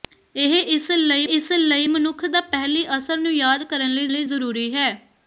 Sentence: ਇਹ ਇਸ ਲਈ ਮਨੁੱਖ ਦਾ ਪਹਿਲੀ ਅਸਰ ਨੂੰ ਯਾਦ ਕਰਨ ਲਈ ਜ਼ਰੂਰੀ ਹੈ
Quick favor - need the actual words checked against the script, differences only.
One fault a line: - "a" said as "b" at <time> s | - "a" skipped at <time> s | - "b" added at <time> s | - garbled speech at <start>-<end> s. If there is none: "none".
- "ਇਸ ਲਈ" added at 1.3 s
- "ਲਈ" added at 4.1 s